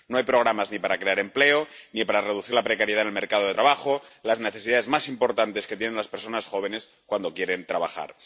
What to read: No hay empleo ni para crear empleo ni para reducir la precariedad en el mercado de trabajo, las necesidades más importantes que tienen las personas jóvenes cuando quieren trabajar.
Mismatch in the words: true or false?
true